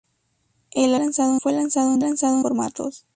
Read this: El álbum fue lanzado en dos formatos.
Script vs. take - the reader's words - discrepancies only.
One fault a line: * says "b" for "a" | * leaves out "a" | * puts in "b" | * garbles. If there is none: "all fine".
* says "lanzado" for "álbum"
* says "lanzado" for "dos"